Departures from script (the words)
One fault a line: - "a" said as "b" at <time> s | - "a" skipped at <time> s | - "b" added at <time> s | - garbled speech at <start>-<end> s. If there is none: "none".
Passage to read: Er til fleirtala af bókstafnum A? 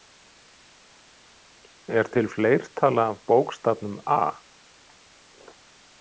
none